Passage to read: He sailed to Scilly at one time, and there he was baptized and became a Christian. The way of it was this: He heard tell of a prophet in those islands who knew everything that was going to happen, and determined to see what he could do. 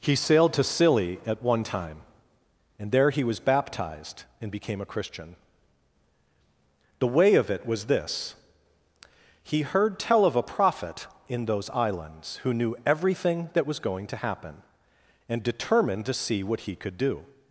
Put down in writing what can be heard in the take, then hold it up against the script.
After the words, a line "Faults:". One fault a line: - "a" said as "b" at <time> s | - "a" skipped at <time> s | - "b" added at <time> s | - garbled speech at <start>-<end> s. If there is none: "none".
He sailed to Scilly at one time, and there he was baptized and became a Christian. The way of it was this: He heard tell of a prophet in those islands who knew everything that was going to happen, and determined to see what he could do.
Faults:
none